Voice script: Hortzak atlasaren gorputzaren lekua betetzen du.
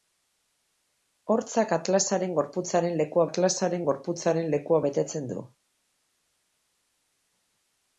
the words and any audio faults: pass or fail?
fail